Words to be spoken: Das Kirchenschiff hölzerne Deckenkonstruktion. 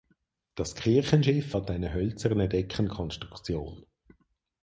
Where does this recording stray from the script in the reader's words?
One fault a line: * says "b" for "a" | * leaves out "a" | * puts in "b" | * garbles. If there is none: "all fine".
* puts in "hat eine"